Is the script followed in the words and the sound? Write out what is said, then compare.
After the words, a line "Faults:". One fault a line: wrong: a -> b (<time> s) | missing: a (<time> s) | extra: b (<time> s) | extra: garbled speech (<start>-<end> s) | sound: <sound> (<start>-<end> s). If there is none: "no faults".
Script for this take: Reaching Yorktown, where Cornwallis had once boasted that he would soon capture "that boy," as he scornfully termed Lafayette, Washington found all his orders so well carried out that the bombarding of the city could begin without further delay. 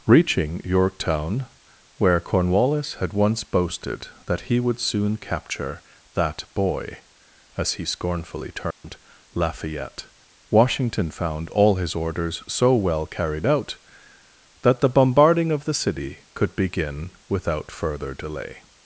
Reaching Yorktown, where Cornwallis had once boasted that he would soon capture "that boy," as he scornfully termed Lafayette, Washington found all his orders so well carried out that the bombarding of the city could begin without further delay.
Faults:
sound: dropout (8.7-8.8 s)